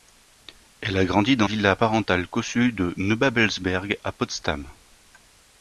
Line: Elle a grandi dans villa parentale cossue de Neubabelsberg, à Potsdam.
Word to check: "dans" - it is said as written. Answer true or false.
true